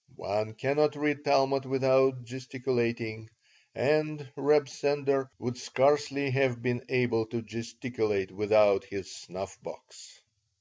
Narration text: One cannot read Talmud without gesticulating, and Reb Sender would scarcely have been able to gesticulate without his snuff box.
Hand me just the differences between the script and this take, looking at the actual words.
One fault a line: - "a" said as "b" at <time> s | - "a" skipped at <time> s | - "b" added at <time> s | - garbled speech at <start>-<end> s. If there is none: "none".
none